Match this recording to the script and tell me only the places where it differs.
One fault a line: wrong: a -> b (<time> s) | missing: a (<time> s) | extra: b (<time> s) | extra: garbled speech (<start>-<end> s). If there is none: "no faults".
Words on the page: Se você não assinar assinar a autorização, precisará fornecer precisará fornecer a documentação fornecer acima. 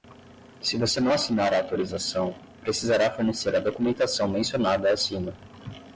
missing: assinar (1.5 s)
missing: precisará fornecer (3.5 s)
wrong: fornecer -> mencionada (4.3 s)